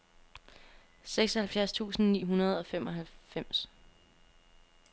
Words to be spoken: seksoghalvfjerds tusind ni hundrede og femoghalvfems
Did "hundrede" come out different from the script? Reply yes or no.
no